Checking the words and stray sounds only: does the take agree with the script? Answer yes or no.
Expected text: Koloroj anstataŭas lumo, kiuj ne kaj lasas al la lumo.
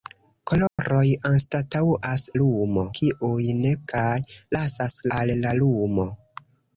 no